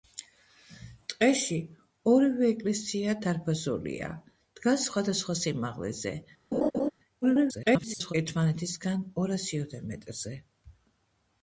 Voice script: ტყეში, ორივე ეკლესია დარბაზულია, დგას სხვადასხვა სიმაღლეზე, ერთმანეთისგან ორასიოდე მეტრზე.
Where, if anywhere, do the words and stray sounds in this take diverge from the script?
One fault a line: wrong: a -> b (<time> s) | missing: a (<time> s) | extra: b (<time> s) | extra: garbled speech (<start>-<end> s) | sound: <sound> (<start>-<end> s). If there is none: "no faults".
sound: laugh (6.5-6.9 s)
extra: garbled speech (7.2-8.1 s)